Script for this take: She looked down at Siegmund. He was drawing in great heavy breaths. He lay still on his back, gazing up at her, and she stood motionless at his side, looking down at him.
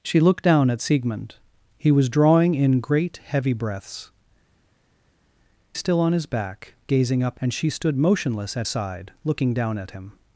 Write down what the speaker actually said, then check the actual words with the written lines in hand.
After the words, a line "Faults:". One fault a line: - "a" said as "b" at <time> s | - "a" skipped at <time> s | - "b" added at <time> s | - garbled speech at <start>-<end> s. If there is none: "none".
She looked down at Siegmund. He was drawing in great heavy breaths. Still on his back, gazing up and she stood motionless at side, looking down at him.
Faults:
- "He lay" skipped at 4.1 s
- "at her" skipped at 7.4 s
- "his" skipped at 8.7 s